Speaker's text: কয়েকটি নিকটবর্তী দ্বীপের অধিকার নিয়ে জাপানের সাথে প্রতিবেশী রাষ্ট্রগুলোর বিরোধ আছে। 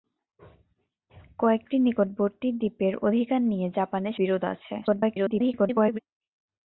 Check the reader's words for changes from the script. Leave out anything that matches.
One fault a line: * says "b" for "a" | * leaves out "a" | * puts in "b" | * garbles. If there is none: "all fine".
* leaves out "সাথে প্রতিবেশী রাষ্ট্রগুলোর"
* garbles